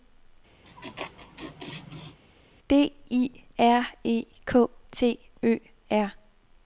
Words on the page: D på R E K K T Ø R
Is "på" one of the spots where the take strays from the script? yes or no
yes